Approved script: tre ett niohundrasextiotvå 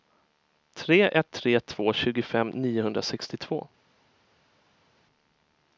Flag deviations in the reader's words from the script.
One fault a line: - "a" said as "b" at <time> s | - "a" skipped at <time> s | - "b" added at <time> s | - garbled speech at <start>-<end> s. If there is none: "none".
- "tre två tjugofem" added at 1.3 s